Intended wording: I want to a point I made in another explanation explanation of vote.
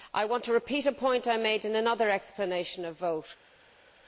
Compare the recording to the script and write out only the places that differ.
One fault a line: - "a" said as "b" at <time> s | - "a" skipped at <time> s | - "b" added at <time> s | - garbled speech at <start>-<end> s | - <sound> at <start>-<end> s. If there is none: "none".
- "repeat" added at 0.5 s
- "explanation" skipped at 2.9 s